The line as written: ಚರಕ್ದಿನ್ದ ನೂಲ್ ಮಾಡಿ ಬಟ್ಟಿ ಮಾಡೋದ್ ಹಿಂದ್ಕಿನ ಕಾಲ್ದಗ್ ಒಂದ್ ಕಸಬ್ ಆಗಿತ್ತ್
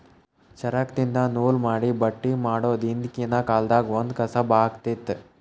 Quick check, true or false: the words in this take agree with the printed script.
true